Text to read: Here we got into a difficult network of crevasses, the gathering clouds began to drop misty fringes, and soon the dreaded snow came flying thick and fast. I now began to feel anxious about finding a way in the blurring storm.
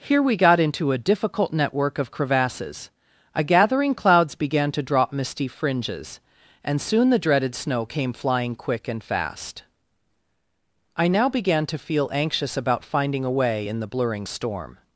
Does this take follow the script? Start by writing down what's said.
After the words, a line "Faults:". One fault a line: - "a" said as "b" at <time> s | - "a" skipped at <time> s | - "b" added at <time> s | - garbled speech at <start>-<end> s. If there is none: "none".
Here we got into a difficult network of crevasses, a gathering clouds began to drop misty fringes, and soon the dreaded snow came flying quick and fast. I now began to feel anxious about finding a way in the blurring storm.
Faults:
- "the" said as "a" at 3.4 s
- "thick" said as "quick" at 8.6 s